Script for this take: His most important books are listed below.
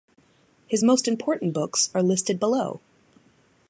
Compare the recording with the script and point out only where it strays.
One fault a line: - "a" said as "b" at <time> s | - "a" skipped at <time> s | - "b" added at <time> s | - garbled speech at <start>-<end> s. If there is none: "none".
none